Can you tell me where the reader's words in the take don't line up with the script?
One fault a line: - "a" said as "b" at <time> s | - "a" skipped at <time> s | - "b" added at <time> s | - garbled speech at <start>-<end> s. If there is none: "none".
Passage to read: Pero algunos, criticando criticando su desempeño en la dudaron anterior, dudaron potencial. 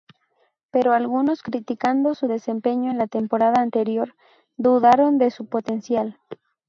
- "criticando" skipped at 2.1 s
- "dudaron" said as "temporada" at 3.1 s
- "de su" added at 5.2 s